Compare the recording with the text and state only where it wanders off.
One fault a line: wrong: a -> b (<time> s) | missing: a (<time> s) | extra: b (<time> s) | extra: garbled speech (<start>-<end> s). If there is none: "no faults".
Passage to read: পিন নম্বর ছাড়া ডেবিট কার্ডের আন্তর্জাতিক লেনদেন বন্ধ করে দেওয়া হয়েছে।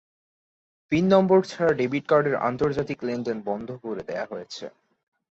no faults